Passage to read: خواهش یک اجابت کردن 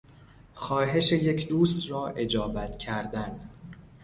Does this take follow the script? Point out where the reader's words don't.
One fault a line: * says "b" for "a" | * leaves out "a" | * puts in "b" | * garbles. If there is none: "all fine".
* puts in "دوست را"